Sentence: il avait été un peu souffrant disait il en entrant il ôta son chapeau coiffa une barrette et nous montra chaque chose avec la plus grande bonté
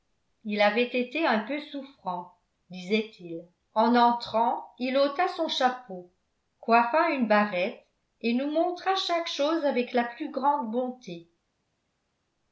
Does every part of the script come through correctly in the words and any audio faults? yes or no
yes